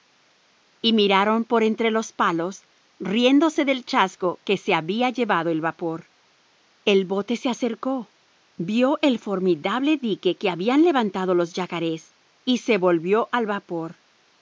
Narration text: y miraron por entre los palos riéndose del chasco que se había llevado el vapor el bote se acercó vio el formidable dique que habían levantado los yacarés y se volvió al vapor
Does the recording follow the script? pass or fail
pass